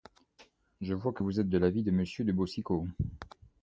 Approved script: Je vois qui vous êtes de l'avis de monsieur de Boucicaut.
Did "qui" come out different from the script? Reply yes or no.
yes